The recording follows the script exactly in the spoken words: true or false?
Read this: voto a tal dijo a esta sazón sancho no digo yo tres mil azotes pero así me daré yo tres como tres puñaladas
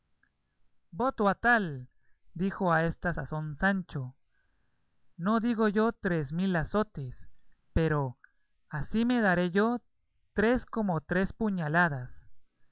true